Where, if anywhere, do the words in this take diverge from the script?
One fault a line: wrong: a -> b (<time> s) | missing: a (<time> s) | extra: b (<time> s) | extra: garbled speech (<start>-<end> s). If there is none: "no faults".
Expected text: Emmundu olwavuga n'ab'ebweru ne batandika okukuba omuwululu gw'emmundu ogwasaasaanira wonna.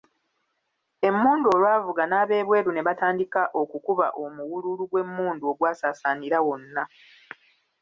no faults